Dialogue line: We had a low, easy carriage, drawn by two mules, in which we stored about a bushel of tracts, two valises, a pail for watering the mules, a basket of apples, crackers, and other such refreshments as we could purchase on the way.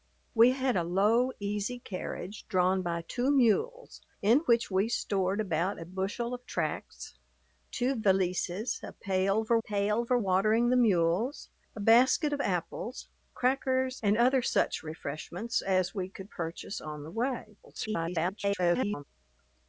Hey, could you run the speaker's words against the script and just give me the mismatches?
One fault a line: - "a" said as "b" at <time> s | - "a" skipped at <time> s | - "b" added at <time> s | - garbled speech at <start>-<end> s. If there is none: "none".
- "pail for" added at 9.6 s
- garbled speech at 17.6-19.0 s